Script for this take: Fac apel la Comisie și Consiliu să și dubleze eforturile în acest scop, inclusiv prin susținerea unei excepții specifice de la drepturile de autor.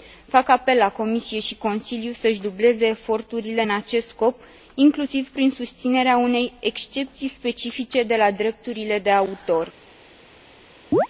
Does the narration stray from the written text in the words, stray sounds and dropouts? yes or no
yes